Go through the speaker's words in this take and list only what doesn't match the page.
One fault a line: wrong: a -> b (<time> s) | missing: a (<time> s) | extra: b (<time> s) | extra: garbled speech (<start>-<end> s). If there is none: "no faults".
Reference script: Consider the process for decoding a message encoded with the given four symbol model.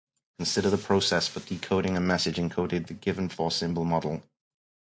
missing: with (2.9 s)